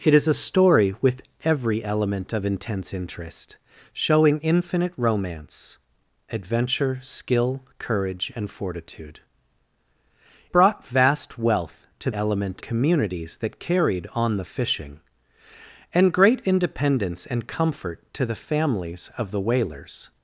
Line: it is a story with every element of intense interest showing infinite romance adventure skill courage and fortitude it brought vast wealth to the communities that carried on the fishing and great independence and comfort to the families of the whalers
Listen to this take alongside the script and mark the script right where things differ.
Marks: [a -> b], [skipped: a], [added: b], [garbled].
it is a story with every element of intense interest showing infinite romance adventure skill courage and fortitude [skipped: it] brought vast wealth to [the -> element] communities that carried on the fishing and great independence and comfort to the families of the whalers